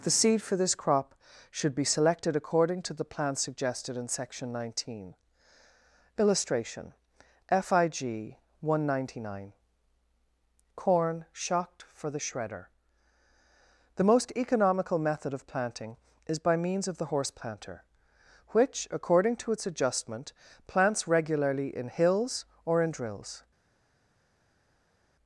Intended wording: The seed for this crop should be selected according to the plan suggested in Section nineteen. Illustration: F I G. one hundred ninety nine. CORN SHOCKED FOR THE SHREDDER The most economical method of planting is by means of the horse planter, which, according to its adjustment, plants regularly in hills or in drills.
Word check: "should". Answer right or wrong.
right